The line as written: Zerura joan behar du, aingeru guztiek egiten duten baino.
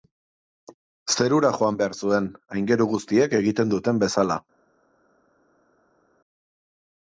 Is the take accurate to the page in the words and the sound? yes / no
no